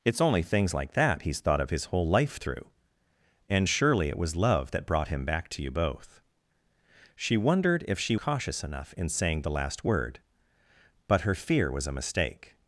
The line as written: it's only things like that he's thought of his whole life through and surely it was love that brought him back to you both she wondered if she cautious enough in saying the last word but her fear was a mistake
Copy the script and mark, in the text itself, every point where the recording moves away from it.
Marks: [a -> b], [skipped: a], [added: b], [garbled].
it's only things like that he's thought of his whole life through and surely it was love that brought him back to you both she wondered if she cautious enough in saying the last word but her fear was a mistake